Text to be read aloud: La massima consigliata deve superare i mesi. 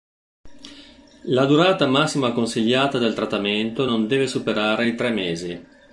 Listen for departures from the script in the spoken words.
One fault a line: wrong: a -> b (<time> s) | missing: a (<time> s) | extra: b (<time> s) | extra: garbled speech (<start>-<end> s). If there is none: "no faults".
extra: durata (1.4 s)
extra: del trattamento non (3.0 s)
extra: tre (4.9 s)